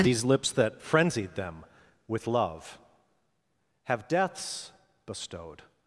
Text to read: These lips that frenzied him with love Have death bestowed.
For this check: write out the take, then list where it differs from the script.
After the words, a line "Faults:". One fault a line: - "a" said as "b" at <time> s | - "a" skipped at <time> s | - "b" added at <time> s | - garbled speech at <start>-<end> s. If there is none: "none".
These lips that frenzied them with love Have deaths bestowed.
Faults:
- "him" said as "them" at 1.4 s
- "death" said as "deaths" at 4.1 s